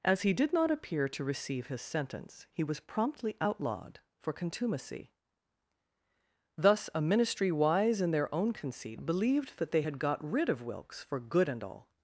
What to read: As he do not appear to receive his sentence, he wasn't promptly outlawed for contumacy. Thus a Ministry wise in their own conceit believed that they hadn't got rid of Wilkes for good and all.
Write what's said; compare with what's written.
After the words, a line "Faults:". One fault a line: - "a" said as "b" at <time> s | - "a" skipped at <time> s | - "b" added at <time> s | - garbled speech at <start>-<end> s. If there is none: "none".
As he did not appear to receive his sentence, he was promptly outlawed for contumacy. Thus a Ministry wise in their own conceit believed that they had got rid of Wilkes for good and all.
Faults:
- "do" said as "did" at 0.3 s
- "wasn't" said as "was" at 2.6 s
- "hadn't" said as "had" at 9.8 s